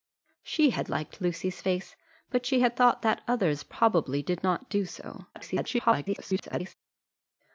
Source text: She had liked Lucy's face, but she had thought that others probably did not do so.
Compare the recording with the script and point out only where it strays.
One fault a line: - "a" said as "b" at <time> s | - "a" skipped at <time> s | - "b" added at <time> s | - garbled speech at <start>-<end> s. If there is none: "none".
- garbled speech at 5.3-6.7 s